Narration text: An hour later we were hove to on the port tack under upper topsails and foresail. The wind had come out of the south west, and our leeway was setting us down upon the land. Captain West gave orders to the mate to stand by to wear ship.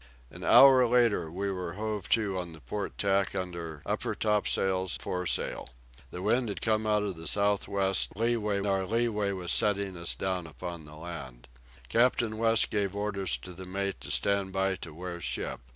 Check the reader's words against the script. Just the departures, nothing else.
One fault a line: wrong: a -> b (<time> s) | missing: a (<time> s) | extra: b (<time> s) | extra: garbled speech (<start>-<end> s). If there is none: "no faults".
missing: and (5.0 s)
wrong: and -> leeway (8.1 s)